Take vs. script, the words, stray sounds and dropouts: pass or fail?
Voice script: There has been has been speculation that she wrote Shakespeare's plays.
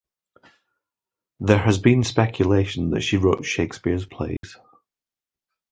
fail